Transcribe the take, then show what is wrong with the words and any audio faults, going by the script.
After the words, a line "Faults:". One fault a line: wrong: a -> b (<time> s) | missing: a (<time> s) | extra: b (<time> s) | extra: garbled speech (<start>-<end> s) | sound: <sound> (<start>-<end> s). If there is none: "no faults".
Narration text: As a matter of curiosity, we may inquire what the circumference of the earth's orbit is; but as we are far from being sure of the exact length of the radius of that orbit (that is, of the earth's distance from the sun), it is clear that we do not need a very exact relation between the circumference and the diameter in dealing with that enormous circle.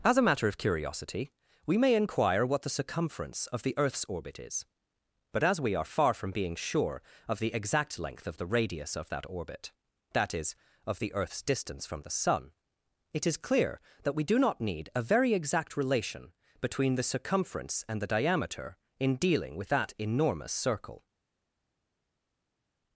As a matter of curiosity, we may inquire what the circumference of the earth's orbit is; but as we are far from being sure of the exact length of the radius of that orbit (that is, of the earth's distance from the sun), it is clear that we do not need a very exact relation between the circumference and the diameter in dealing with that enormous circle.
Faults:
no faults